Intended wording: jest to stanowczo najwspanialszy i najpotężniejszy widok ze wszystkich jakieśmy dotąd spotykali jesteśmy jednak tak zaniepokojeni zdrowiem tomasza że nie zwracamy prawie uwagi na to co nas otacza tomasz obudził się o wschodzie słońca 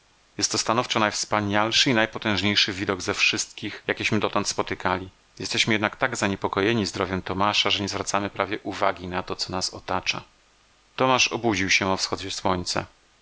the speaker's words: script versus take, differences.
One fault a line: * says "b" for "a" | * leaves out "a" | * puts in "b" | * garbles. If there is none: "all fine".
all fine